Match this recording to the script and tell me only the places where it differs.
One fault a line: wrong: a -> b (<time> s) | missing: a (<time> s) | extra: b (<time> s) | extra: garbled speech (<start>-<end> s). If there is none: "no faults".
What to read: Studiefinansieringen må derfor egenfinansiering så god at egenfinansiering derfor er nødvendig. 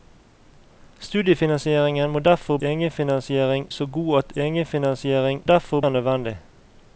no faults